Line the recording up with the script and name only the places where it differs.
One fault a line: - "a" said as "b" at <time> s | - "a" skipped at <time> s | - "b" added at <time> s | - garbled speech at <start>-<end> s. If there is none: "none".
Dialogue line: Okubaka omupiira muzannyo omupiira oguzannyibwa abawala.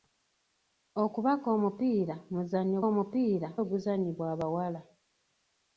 none